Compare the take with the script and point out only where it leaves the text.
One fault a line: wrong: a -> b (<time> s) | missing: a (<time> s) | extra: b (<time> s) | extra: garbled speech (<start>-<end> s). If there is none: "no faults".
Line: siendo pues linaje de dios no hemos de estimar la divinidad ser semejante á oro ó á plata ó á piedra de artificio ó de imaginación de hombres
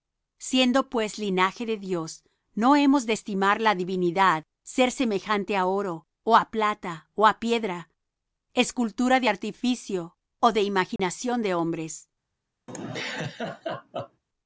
extra: escultura (8.5 s)